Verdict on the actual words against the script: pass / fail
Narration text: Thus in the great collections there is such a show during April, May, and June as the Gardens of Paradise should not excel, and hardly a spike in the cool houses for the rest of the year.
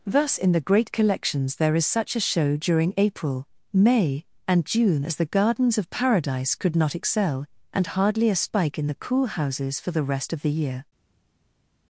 fail